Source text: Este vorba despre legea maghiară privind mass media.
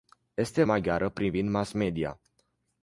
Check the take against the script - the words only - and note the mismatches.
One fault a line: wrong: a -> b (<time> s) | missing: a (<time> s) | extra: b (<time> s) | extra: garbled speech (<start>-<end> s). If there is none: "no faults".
missing: vorba despre legea (0.6 s)